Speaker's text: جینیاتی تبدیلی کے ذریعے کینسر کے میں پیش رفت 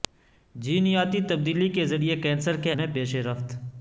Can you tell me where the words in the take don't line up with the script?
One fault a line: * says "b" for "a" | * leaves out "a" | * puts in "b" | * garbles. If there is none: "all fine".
all fine